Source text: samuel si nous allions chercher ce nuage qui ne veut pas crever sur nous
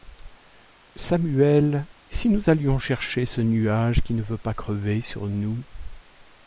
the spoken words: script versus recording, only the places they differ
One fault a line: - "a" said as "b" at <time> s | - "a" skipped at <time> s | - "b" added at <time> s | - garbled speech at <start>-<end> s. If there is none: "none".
none